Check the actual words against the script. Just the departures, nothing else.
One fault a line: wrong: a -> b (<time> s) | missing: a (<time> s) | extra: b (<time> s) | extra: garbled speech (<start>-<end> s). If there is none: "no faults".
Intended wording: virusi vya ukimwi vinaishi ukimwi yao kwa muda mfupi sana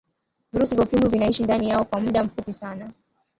wrong: ukimwi -> ndani (1.4 s)